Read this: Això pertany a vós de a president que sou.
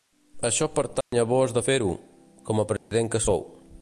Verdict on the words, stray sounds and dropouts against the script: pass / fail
fail